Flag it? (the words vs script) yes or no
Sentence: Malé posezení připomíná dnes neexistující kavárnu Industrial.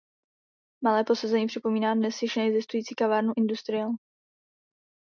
yes